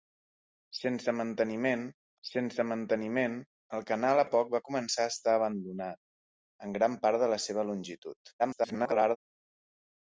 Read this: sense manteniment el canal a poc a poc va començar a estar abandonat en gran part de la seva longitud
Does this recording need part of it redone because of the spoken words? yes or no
yes